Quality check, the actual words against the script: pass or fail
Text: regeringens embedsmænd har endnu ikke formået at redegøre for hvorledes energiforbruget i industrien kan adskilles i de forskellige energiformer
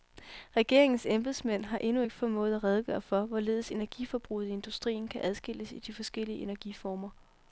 pass